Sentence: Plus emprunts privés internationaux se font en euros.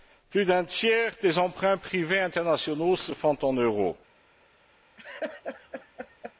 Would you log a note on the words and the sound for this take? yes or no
yes